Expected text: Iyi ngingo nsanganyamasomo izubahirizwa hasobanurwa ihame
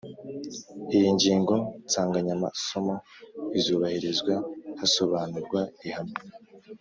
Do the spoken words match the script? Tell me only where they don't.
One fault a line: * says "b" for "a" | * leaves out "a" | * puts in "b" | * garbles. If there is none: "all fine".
all fine